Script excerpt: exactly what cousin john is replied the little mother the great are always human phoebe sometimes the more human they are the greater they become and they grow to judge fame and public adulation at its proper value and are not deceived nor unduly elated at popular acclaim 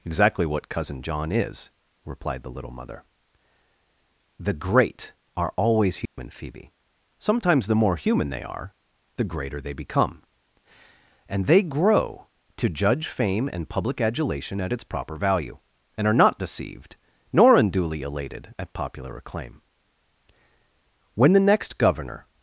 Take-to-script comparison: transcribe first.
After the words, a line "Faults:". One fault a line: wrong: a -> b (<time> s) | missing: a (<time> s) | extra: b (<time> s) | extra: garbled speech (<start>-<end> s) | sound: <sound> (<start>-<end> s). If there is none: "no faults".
exactly what cousin john is replied the little mother the great are always human phoebe sometimes the more human they are the greater they become and they grow to judge fame and public adulation at its proper value and are not deceived nor unduly elated at popular acclaim when the next governor
Faults:
sound: dropout (6.1-6.2 s)
extra: when the next governor (21.1 s)